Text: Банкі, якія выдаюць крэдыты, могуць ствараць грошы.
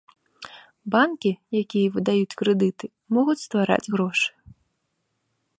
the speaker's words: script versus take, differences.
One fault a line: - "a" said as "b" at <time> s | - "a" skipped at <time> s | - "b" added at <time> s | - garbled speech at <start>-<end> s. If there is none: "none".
none